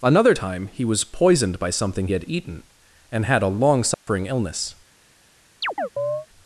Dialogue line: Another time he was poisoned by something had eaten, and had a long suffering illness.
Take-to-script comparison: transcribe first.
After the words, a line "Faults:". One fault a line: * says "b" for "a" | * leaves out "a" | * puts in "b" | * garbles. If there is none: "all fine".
Another time he was poisoned by something had eaten, and had a long suffering illness.
Faults:
all fine